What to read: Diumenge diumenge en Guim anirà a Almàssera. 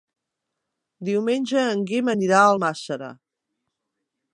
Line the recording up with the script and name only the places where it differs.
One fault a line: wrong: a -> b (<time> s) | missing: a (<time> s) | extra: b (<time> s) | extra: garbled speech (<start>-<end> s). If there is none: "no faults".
missing: diumenge (1.7 s)